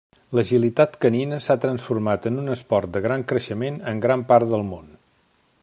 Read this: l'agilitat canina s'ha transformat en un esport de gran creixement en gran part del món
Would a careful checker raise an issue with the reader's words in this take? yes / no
no